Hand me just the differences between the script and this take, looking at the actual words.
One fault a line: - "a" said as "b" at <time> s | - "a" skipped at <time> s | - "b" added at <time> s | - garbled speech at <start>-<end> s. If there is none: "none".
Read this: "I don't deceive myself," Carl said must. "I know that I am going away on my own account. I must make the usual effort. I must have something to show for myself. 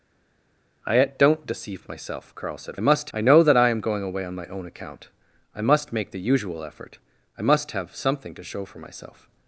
none